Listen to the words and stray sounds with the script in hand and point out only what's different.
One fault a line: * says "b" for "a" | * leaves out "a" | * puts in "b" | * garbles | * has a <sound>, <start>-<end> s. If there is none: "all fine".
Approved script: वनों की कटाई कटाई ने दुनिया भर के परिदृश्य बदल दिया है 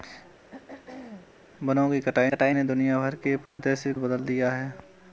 * has a throat clearing, 0.5-1.4 s
* has a dropout, 3.5-3.6 s